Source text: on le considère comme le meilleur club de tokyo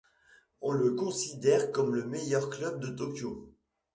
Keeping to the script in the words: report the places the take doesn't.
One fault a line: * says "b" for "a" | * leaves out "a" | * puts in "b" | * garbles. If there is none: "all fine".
all fine